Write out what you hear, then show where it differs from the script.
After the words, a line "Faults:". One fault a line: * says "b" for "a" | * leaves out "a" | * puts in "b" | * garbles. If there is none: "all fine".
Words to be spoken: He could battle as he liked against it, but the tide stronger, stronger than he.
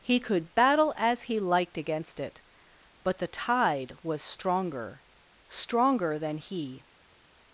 He could battle as he liked against it, but the tide was stronger, stronger than he.
Faults:
* puts in "was"